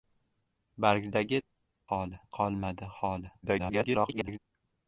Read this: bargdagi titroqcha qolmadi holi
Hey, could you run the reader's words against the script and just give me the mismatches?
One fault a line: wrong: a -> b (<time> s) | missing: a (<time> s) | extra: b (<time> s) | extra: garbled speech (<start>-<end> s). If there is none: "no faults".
wrong: titroqcha -> holi (1.9 s)
extra: garbled speech (3.4-4.4 s)